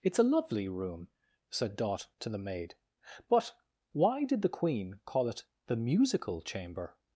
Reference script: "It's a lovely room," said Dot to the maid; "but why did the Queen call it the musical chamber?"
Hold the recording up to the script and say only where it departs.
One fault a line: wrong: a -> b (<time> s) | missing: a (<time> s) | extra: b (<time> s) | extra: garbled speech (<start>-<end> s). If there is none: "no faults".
no faults